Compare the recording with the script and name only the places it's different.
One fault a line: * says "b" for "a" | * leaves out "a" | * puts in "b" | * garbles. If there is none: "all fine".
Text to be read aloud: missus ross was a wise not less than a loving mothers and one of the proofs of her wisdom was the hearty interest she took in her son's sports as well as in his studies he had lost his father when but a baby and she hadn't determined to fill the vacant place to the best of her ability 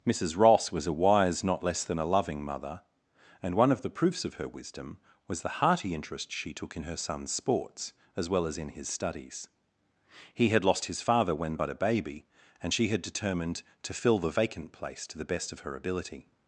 * says "mother" for "mothers"
* says "had" for "hadn't"